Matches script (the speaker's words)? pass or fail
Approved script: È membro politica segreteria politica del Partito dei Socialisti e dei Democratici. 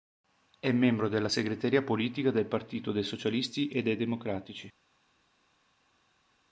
fail